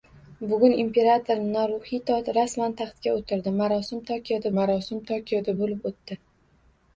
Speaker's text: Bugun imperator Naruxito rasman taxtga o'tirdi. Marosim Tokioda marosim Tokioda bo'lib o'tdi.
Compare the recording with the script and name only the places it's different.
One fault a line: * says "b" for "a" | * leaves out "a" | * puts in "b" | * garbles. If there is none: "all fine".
all fine